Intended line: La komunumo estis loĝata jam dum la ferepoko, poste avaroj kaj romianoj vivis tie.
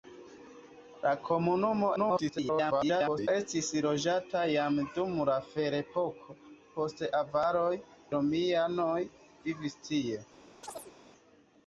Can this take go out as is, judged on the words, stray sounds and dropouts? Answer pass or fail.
fail